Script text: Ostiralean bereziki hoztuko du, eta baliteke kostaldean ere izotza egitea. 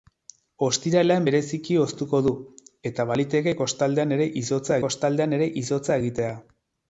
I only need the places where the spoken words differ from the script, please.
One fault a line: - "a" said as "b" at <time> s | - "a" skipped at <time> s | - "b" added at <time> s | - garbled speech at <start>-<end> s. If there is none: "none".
- "kostaldean ere izotza" added at 4.9 s